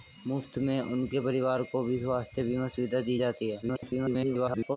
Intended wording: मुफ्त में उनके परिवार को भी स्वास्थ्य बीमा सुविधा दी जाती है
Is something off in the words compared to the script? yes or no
yes